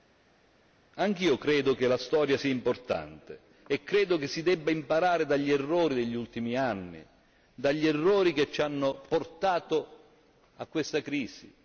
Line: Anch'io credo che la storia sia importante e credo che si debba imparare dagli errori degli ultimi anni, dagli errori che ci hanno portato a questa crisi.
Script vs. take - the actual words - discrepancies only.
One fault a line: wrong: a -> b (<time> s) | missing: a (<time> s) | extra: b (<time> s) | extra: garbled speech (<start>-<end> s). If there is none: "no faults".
no faults